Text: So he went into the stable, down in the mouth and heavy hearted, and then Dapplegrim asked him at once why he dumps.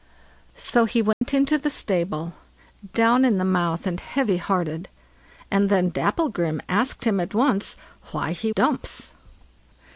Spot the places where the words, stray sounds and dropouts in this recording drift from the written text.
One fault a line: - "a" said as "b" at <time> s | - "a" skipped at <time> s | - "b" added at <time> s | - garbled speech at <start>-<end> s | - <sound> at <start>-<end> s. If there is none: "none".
- dropout at 1.1-1.2 s